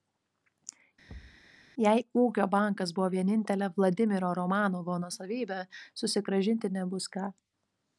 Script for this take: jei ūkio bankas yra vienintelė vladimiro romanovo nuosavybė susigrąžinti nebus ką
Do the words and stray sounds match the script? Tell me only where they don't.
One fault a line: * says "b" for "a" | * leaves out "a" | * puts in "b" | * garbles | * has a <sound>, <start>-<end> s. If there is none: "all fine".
* has a thud, 1.1-1.5 s
* says "buvo" for "yra"